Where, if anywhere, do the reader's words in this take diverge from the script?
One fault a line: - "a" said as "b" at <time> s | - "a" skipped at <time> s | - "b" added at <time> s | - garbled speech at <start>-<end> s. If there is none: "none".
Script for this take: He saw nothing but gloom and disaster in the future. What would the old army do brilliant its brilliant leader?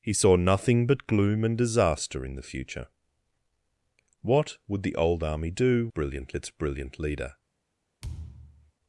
none